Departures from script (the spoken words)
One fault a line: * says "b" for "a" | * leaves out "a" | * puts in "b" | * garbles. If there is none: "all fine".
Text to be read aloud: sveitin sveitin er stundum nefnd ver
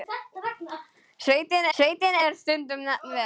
all fine